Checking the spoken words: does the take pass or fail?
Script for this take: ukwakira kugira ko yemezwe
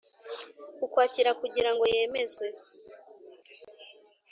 fail